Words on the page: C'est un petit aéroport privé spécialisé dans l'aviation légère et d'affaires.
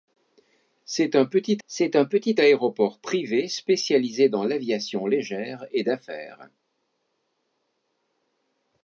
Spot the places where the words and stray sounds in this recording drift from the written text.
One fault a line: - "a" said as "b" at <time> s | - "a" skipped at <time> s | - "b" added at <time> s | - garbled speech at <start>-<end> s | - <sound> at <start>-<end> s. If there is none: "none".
- "c'est un petit" added at 1.7 s